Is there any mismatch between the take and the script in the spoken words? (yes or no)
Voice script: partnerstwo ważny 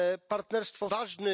no